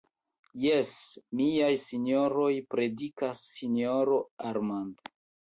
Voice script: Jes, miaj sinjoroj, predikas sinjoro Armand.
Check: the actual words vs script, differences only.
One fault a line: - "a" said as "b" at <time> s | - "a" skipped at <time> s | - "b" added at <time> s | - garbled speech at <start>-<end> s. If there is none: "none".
none